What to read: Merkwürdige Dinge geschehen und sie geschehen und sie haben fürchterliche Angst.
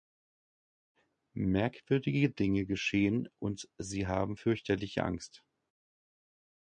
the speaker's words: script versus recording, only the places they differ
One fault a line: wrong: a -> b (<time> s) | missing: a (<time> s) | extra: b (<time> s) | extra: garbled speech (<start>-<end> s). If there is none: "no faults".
missing: geschehen und sie (4.1 s)